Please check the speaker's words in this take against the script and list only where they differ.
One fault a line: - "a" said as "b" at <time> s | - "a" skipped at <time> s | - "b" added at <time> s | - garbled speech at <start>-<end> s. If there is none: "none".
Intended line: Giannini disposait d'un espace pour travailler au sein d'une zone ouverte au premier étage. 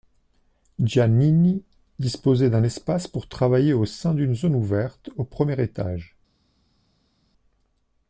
none